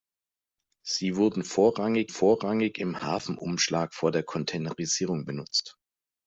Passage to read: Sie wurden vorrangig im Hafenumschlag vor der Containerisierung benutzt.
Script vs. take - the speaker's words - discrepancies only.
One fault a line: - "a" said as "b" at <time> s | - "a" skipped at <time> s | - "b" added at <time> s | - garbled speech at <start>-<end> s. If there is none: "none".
- "vorrangig" added at 2.1 s